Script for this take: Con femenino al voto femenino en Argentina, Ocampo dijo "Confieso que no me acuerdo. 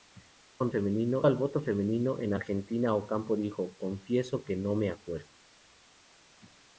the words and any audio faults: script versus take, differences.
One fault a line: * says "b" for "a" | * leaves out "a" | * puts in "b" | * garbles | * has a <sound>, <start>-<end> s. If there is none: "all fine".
all fine